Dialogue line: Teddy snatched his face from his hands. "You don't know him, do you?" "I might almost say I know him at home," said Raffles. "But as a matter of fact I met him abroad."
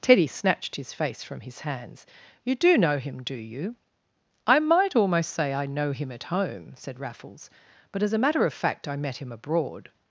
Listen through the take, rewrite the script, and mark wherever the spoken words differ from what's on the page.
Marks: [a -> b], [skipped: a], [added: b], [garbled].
Teddy snatched his face from his hands. "You [don't -> do] know him, do you?" "I might almost say I know him at home," said Raffles. "But as a matter of fact I met him abroad."